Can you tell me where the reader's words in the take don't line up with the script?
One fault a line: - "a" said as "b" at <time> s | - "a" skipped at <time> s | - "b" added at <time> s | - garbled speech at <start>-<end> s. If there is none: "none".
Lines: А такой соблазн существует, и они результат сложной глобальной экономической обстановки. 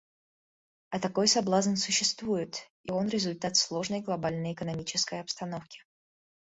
- "они" said as "он" at 2.9 s